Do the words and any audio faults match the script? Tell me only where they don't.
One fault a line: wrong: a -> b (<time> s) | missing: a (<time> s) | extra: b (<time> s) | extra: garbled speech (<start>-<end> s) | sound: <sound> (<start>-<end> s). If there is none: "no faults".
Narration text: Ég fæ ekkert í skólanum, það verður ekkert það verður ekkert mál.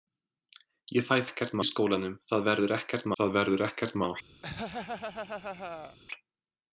sound: laugh (4.4-6.0 s)